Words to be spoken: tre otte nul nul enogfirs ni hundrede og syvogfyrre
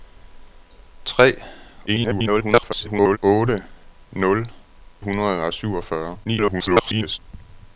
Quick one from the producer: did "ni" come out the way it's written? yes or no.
no